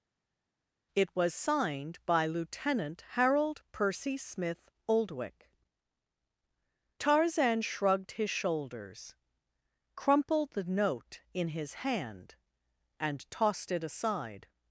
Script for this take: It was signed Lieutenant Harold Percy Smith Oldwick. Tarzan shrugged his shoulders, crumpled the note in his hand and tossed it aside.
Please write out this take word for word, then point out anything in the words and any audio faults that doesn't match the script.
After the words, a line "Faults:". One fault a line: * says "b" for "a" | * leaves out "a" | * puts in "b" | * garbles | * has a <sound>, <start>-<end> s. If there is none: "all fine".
It was signed by Lieutenant Harold Percy Smith Oldwick. Tarzan shrugged his shoulders, crumpled the note in his hand and tossed it aside.
Faults:
* puts in "by"